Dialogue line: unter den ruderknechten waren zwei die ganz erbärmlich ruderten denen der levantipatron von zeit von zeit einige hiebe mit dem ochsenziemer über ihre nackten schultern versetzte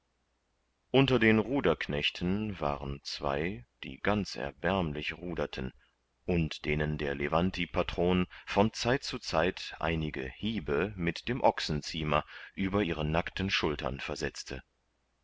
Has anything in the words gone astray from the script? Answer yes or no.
yes